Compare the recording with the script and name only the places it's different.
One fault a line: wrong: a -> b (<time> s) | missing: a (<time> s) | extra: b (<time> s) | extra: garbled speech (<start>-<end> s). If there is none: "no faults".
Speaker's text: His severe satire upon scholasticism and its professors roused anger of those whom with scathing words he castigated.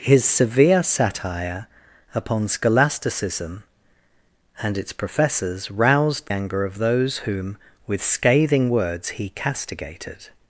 no faults